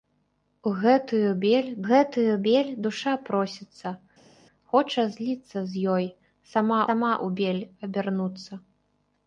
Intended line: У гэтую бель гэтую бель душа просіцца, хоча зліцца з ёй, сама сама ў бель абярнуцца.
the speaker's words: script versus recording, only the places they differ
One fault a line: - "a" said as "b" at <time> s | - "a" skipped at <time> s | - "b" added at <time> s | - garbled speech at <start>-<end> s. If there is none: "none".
none